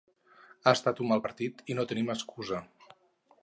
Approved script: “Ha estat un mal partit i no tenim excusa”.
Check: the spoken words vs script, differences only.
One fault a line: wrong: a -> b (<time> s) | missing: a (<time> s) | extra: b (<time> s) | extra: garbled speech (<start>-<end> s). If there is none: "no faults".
no faults